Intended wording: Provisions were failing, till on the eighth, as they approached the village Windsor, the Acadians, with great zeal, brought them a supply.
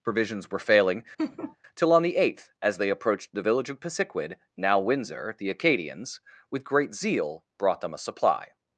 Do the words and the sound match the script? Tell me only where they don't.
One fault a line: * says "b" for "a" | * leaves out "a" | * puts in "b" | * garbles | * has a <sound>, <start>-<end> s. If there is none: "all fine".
* has a laugh, 1.2-1.6 s
* puts in "of Pisiquid now"